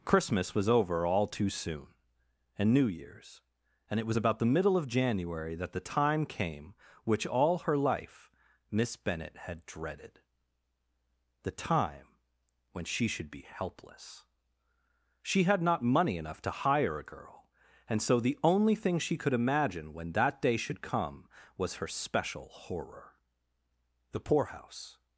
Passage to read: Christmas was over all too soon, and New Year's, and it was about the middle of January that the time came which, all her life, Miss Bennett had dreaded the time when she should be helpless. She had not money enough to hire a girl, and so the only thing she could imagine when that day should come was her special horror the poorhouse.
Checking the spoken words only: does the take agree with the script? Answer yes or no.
yes